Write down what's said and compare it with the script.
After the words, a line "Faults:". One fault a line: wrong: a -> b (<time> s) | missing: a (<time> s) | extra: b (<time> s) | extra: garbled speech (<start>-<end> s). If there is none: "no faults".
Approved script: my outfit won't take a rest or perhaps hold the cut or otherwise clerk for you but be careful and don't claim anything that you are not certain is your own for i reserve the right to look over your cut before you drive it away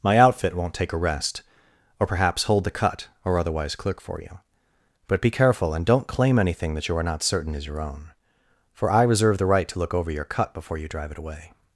my outfit won't take a rest or perhaps hold the cut or otherwise clerk for you but be careful and don't claim anything that you are not certain is your own for i reserve the right to look over your cut before you drive it away
Faults:
no faults